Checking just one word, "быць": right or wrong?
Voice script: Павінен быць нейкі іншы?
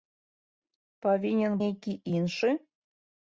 wrong